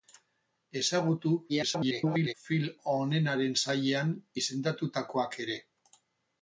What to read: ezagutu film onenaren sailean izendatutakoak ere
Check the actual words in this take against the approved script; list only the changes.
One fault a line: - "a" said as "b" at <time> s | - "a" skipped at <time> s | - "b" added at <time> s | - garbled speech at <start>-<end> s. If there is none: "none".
- garbled speech at 1.5-2.3 s